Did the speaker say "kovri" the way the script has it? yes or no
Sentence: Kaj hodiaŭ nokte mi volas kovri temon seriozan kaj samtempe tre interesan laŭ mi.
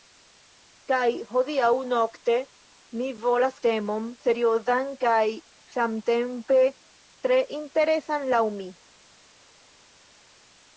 no